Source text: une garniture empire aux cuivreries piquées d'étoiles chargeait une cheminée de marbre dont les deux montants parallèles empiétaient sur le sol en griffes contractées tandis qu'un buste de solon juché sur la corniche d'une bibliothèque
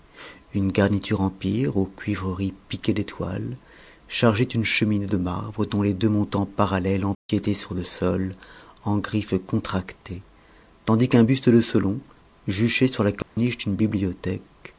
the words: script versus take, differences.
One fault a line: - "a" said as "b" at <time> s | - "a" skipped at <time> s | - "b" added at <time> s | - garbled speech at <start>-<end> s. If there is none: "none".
none